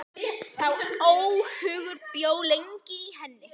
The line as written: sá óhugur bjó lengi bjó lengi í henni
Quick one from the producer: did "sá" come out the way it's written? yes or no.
yes